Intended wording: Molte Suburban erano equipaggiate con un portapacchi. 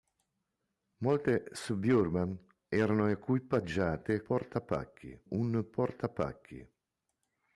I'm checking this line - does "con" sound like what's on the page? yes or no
no